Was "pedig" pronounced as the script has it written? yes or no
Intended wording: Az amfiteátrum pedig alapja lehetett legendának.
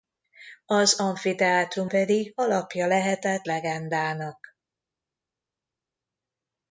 yes